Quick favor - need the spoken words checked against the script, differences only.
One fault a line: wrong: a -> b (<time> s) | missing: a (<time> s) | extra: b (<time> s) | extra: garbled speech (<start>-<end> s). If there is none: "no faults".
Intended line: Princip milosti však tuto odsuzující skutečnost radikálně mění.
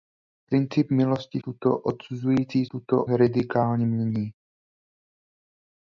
missing: však (1.4 s)
wrong: skutečnost -> tuto (2.7 s)